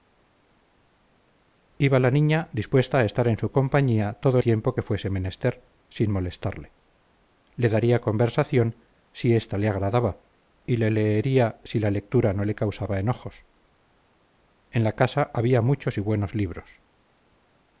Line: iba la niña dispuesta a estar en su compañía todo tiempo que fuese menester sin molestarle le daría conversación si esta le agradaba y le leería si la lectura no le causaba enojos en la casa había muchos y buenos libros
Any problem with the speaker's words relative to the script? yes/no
no